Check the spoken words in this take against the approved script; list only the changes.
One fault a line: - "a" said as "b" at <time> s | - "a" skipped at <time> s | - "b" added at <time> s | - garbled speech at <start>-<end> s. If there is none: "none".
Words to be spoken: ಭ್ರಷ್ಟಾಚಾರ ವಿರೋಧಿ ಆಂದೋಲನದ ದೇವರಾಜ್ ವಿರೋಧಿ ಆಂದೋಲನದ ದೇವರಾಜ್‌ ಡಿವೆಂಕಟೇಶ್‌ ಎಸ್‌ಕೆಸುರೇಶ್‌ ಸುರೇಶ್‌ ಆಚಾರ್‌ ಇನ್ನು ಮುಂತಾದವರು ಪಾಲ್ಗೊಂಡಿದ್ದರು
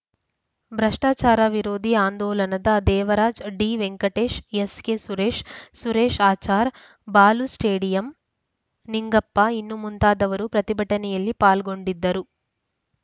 - "ವಿರೋಧಿ ಆಂದೋಲನದ ದೇವರಾಜ್" skipped at 3.4 s
- "ಬಾಲು ಸ್ಟೇಡಿಯಂ ನಿಂಗಪ್ಪ" added at 7.1 s
- "ಪ್ರತಿಭಟನೆಯಲ್ಲಿ" added at 10.5 s